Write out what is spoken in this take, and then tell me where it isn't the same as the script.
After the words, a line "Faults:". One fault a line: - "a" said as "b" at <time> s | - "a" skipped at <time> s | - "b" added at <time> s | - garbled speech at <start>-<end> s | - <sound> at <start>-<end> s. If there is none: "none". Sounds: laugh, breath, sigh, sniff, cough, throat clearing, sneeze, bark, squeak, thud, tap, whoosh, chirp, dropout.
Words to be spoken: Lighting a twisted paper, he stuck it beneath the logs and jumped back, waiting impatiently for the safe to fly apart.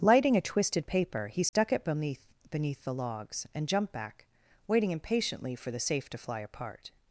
Lighting a twisted paper, he stuck it beneath beneath the logs and jumped back, waiting impatiently for the safe to fly apart.
Faults:
- dropout at 1.5-1.5 s
- "beneath" added at 2.5 s